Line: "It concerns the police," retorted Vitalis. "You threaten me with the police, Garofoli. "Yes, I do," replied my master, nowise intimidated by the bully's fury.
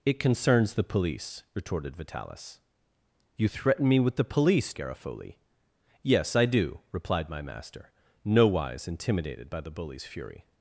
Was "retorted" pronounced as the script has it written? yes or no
yes